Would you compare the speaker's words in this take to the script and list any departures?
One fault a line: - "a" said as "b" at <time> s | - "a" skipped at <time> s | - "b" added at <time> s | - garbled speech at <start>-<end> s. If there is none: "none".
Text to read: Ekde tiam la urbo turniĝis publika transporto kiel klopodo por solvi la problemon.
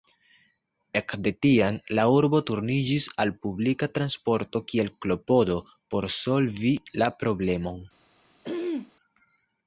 - "al" added at 3.2 s